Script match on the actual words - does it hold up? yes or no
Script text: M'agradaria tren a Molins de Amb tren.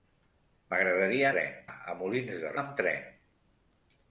yes